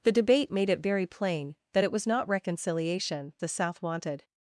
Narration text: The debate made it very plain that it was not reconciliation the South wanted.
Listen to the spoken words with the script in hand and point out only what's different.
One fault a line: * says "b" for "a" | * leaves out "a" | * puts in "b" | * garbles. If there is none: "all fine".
all fine